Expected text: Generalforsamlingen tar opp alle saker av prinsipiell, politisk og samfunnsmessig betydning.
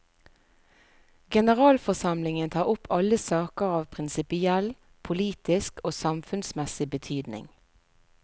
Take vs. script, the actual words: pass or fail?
pass